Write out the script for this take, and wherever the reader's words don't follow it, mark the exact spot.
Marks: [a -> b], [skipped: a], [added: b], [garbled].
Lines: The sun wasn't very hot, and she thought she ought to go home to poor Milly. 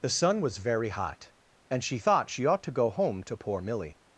The sun [wasn't -> was] very hot, and she thought she ought to go home to poor Milly.